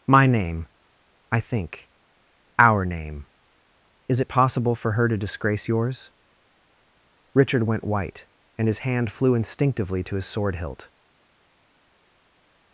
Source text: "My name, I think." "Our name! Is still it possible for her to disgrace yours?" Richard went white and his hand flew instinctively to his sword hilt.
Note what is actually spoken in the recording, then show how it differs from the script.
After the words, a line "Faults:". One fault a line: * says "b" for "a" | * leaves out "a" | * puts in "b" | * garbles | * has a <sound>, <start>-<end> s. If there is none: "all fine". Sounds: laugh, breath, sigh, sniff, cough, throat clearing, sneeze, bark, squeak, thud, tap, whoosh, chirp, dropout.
"My name, I think." "Our name! Is it possible for her to disgrace yours?" Richard went white and his hand flew instinctively to his sword hilt.
Faults:
* leaves out "still"